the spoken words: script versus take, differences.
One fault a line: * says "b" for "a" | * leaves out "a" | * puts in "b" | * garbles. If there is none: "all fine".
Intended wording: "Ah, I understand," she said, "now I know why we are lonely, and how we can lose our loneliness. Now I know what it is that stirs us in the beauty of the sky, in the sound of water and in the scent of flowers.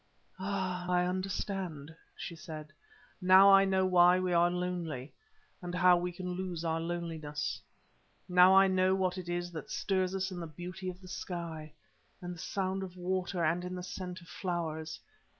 all fine